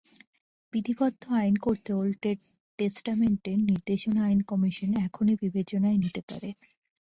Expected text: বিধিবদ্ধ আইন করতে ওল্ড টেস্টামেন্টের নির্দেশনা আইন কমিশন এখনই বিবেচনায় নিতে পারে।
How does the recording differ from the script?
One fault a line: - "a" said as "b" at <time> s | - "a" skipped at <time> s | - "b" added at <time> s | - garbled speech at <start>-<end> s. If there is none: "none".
none